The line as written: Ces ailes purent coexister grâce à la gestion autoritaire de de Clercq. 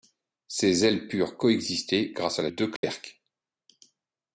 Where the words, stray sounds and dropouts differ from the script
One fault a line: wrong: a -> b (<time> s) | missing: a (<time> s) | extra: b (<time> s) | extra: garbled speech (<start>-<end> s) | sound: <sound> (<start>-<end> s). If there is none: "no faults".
missing: gestion autoritaire de (2.5 s)
sound: dropout (2.8-2.8 s)